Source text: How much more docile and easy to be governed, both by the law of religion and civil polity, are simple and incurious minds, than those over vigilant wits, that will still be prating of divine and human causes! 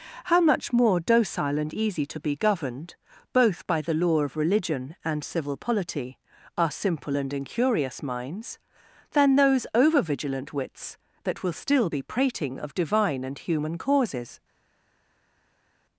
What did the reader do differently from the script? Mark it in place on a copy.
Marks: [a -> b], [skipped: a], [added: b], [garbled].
How much more docile and easy to be governed, both by the law of religion and civil polity, are simple and incurious minds, than those over vigilant wits, that will still be prating of divine and human causes!